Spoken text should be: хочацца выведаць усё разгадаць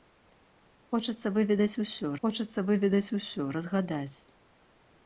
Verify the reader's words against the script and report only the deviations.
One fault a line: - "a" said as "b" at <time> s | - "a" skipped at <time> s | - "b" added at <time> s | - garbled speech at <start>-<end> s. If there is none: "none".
- "хочацца выведаць усё" added at 2.3 s